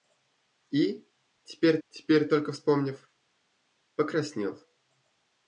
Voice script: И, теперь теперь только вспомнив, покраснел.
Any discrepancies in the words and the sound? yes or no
no